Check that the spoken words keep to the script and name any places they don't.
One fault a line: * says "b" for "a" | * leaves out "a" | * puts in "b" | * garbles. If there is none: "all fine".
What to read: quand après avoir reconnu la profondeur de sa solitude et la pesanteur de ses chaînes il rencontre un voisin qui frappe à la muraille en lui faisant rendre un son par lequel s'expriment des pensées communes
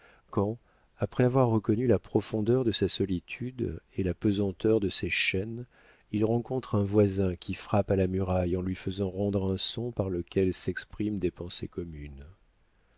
all fine